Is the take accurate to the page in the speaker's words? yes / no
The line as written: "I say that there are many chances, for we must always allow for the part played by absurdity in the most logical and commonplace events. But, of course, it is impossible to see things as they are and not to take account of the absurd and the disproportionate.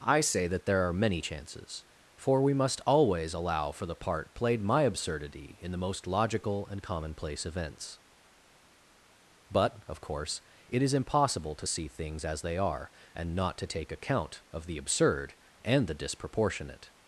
no